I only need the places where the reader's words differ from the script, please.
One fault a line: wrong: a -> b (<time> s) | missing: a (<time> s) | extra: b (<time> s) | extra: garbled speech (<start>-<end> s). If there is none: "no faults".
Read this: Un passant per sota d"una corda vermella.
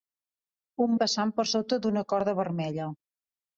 no faults